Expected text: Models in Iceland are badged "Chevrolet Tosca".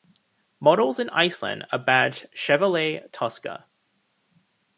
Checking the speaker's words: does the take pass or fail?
pass